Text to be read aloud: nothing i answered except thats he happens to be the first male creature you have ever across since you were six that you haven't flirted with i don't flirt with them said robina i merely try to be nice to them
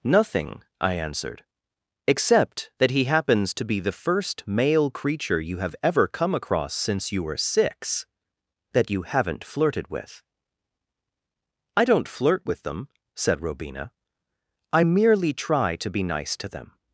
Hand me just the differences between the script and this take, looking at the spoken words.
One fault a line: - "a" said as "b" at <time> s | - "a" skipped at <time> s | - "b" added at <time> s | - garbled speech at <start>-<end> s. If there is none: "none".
- "thats" said as "that" at 2.8 s
- "come" added at 6.1 s